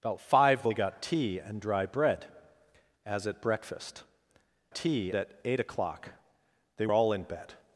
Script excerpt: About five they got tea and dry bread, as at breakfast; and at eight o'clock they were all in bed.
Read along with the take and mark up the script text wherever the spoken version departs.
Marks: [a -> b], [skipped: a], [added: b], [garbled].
About five they got tea and dry bread, as at breakfast; [and -> tea] at eight o'clock they [skipped: were] all in bed.